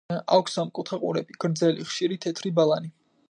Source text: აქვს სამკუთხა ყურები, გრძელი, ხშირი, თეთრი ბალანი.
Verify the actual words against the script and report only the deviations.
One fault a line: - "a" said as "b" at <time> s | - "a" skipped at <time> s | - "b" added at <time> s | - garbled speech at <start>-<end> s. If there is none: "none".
none